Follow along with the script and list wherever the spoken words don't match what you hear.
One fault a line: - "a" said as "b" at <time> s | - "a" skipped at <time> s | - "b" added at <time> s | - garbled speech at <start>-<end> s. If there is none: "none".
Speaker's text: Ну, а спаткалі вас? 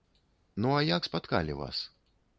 - "як" added at 0.8 s